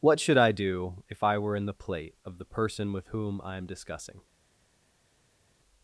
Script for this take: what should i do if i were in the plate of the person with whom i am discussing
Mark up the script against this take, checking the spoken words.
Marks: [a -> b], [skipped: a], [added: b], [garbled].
what should i do if i were in the plate of the person with whom i am discussing